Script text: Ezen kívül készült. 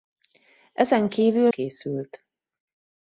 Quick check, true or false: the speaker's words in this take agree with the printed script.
true